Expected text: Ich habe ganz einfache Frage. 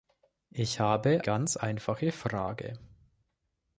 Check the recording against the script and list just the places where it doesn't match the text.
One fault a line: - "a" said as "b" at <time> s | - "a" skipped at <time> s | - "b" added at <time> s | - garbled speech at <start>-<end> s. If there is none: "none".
none